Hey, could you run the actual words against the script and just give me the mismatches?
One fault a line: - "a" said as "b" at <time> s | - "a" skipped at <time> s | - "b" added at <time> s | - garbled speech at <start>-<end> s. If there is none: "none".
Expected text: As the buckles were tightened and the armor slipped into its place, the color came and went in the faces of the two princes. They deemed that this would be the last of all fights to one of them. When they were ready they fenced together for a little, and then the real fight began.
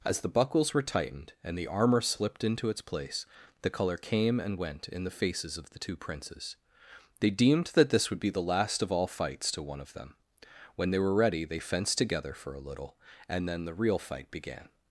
none